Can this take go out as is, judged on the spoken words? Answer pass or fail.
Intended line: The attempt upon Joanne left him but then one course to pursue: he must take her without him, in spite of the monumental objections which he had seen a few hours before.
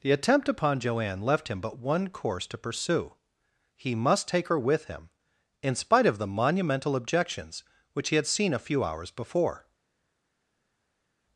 fail